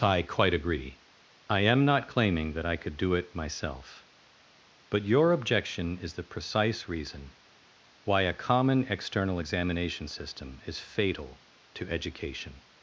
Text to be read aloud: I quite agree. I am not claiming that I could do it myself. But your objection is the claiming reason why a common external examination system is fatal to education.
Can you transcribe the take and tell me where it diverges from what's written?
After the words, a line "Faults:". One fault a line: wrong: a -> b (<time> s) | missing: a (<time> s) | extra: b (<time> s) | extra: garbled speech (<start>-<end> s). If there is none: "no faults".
I quite agree. I am not claiming that I could do it myself. But your objection is the precise reason why a common external examination system is fatal to education.
Faults:
wrong: claiming -> precise (6.3 s)